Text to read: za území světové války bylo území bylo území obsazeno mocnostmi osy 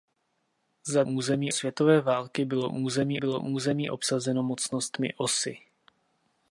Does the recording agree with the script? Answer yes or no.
yes